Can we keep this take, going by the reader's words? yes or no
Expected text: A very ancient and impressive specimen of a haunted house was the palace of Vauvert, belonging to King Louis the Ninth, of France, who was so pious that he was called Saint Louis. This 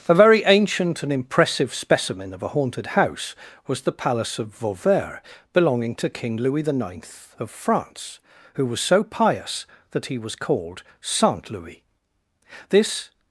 yes